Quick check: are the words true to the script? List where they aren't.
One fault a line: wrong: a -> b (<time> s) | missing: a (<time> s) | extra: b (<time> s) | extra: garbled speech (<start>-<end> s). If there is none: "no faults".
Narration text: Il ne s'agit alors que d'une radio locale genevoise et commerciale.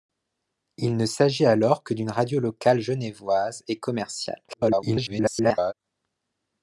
extra: garbled speech (4.5-5.7 s)